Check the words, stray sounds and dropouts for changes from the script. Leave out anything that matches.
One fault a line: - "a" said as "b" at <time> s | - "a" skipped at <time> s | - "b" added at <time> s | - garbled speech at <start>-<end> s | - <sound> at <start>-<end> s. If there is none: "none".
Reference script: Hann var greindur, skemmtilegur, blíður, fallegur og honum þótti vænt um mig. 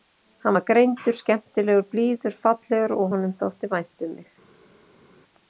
none